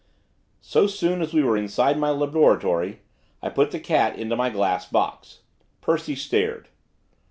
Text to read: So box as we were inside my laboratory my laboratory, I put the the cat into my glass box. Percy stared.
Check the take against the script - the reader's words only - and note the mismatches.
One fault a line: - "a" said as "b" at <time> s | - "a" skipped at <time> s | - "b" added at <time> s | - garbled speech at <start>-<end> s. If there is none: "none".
- "box" said as "soon" at 0.9 s
- "my laboratory" skipped at 3.0 s
- "the" skipped at 3.8 s